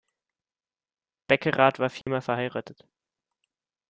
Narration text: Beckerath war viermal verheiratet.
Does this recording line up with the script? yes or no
yes